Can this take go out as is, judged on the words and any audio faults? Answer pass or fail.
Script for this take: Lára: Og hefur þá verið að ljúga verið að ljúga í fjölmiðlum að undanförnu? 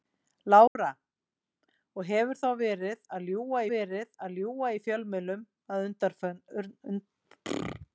fail